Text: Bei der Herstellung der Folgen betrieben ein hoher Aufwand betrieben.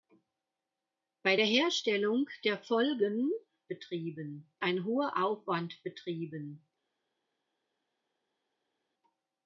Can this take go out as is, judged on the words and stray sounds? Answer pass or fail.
pass